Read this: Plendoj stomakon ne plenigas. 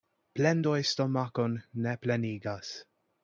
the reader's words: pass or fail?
pass